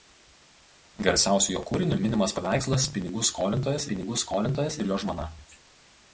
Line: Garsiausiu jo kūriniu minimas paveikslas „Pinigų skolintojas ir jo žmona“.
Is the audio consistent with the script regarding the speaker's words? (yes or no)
no